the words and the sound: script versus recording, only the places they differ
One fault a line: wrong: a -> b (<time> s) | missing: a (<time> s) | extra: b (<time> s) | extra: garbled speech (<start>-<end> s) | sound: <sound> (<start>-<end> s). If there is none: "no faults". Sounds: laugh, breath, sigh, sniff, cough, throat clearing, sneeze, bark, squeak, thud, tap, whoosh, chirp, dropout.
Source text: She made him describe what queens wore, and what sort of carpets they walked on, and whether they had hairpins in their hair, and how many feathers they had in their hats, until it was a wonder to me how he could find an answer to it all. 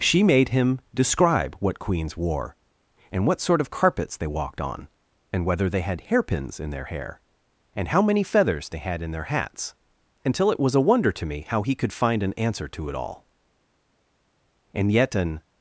extra: And yet an (14.7 s)